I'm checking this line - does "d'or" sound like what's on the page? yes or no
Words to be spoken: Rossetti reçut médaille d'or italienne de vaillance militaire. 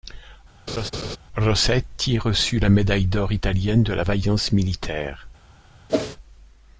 yes